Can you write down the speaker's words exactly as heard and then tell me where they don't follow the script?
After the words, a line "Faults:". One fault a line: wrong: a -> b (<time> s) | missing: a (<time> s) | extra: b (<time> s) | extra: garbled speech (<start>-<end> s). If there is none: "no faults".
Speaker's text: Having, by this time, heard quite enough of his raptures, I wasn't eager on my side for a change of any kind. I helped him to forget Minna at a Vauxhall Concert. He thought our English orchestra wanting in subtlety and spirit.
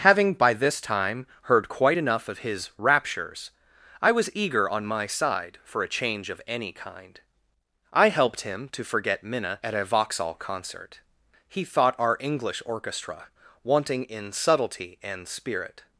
Having, by this time, heard quite enough of his raptures, I was eager on my side for a change of any kind. I helped him to forget Minna at a Vauxhall Concert. He thought our English orchestra wanting in subtlety and spirit.
Faults:
wrong: wasn't -> was (4.1 s)